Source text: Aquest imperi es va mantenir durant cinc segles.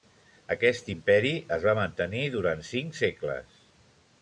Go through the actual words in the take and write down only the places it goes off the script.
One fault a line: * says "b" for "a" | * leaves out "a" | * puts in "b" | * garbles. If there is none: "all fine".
all fine